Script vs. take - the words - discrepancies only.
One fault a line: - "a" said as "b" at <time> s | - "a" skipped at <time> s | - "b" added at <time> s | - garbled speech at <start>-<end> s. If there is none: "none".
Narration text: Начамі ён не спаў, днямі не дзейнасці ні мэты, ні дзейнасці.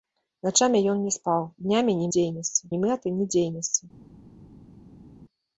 none